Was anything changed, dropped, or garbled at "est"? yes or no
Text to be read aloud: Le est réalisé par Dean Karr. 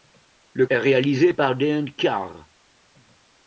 no